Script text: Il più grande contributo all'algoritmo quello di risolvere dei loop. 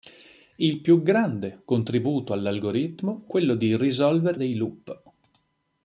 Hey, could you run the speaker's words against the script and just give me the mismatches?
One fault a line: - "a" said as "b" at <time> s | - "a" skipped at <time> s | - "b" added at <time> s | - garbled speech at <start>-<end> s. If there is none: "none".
none